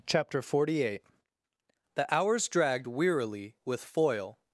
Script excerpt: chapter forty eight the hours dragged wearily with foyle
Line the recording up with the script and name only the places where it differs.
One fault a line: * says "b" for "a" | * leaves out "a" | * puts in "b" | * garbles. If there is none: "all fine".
all fine